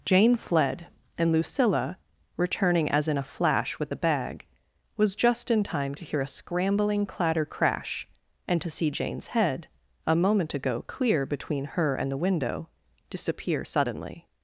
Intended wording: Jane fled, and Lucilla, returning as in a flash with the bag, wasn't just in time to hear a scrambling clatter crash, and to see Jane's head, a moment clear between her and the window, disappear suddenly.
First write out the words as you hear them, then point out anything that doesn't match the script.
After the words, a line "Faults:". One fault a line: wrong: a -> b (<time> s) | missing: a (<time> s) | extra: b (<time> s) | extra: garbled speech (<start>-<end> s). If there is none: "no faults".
Jane fled, and Lucilla, returning as in a flash with the bag, was just in time to hear a scrambling clatter crash, and to see Jane's head, a moment ago clear between her and the window, disappear suddenly.
Faults:
wrong: wasn't -> was (5.0 s)
extra: ago (10.5 s)